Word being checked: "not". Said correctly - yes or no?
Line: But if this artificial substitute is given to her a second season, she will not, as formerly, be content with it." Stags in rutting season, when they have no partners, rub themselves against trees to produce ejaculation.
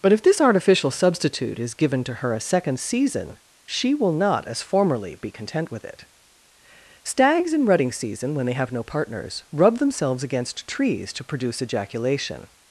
yes